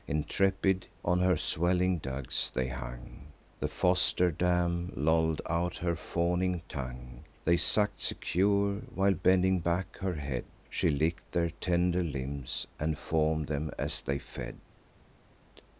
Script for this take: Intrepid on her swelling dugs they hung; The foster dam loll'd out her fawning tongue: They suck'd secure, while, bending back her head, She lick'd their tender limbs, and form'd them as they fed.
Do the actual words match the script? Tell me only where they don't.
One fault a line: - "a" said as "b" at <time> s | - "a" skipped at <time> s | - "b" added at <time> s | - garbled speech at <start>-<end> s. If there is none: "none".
none